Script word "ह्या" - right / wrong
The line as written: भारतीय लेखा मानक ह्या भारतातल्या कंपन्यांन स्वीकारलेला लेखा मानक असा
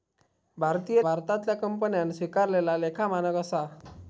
wrong